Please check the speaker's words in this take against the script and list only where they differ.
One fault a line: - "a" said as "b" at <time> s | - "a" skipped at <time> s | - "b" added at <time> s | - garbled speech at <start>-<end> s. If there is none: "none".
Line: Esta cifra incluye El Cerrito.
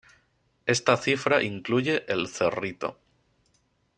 none